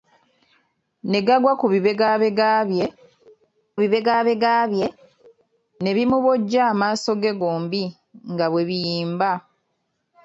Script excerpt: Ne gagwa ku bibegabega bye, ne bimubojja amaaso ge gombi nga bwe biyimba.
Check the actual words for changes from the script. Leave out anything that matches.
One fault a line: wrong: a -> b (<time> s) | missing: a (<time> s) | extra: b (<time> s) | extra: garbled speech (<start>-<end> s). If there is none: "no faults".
extra: bibegabega bye (3.8 s)